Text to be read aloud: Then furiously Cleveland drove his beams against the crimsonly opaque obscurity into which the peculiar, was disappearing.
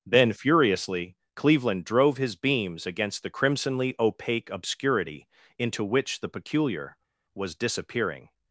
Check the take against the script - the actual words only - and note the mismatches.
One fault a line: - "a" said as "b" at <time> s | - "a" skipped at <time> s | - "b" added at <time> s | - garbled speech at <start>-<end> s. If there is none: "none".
none